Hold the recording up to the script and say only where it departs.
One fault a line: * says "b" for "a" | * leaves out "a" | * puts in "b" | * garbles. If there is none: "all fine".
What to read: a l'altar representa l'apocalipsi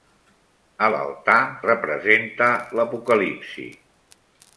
all fine